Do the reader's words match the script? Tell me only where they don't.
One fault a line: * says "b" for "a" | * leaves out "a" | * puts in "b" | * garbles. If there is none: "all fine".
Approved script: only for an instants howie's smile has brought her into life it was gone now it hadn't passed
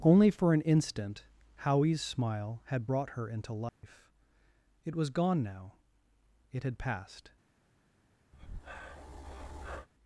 * says "instant" for "instants"
* says "had" for "has"
* says "had" for "hadn't"